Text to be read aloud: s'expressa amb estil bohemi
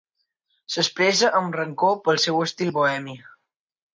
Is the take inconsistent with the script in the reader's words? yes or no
yes